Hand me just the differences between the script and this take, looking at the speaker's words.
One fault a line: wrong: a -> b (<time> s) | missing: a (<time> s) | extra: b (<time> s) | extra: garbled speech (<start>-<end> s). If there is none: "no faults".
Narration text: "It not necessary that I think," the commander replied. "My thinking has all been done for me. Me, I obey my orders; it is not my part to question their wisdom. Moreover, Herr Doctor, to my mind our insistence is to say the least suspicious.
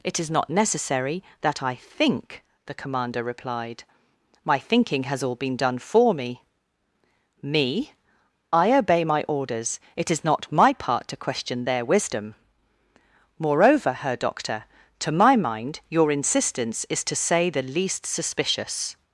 extra: is (0.2 s)
wrong: our -> your (15.9 s)